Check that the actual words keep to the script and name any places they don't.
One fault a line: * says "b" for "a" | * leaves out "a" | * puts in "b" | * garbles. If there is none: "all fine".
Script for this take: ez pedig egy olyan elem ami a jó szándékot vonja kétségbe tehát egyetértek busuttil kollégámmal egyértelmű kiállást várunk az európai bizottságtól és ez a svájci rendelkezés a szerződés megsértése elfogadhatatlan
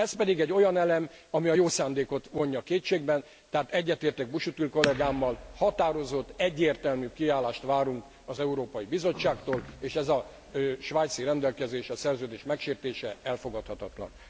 * puts in "határozott"